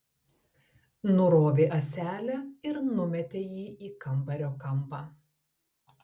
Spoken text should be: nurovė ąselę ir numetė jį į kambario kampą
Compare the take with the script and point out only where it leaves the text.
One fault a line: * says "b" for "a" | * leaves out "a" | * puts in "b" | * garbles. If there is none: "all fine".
all fine